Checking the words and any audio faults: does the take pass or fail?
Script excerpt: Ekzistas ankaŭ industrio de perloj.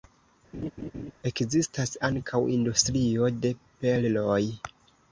fail